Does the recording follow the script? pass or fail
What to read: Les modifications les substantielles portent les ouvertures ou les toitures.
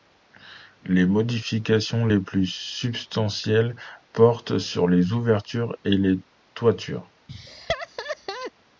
fail